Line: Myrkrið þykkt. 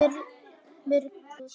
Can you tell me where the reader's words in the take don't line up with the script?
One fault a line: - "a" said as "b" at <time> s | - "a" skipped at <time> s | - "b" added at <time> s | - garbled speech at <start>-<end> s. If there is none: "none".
none